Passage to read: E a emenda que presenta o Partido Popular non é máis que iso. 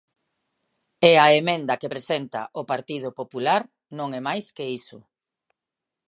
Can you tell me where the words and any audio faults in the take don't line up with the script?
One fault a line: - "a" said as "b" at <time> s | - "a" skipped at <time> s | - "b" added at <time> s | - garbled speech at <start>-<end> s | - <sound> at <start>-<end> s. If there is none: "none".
none